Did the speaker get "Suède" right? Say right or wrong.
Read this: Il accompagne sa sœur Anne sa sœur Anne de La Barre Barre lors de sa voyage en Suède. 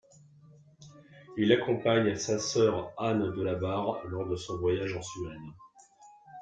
right